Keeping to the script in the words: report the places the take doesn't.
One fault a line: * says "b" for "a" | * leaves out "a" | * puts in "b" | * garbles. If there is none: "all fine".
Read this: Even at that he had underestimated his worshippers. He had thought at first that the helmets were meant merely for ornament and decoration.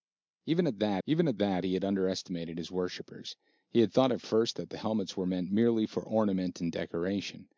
* puts in "even at that"